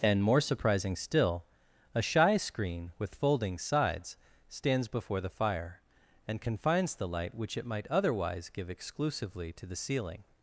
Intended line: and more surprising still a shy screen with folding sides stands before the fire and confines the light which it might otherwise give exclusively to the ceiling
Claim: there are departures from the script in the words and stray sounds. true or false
false